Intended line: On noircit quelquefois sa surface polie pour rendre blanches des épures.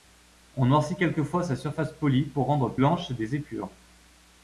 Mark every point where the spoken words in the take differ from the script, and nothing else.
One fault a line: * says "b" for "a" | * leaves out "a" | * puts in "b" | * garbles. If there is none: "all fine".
all fine